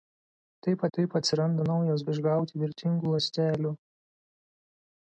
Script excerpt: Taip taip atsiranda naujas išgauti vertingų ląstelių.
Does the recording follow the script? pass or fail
pass